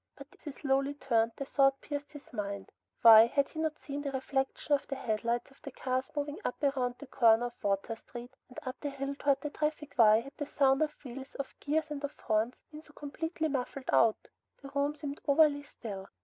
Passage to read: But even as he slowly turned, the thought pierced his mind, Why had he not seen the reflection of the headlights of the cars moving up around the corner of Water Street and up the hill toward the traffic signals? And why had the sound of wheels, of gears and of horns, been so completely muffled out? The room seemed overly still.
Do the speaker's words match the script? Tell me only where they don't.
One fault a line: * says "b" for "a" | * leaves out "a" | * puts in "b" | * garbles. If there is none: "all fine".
* leaves out "even as"
* leaves out "signals And"